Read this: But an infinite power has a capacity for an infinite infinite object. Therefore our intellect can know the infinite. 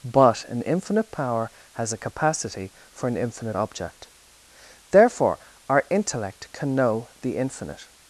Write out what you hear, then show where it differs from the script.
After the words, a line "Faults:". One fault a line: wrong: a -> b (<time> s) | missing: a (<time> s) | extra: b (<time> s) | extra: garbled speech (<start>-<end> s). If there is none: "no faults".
But an infinite power has a capacity for an infinite object. Therefore our intellect can know the infinite.
Faults:
missing: infinite (3.6 s)